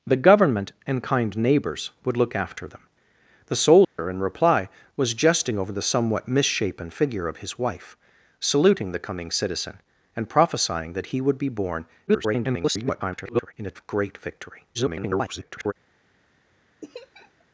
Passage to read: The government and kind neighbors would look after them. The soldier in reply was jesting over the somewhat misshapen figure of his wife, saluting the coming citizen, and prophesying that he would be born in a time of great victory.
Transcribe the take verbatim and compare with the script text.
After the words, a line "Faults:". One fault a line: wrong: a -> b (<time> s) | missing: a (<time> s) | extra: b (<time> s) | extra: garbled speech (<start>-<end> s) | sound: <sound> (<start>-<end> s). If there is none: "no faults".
The government and kind neighbors would look after them. The soldier in reply was jesting over the somewhat misshapen figure of his wife, saluting the coming citizen, and prophesying that he would be born [garbled] in a of great victory. [garbled]
Faults:
sound: dropout (3.8-4.0 s)
extra: garbled speech (12.1-13.5 s)
missing: time (13.8 s)
extra: garbled speech (14.7-15.7 s)
sound: laugh (16.8-17.4 s)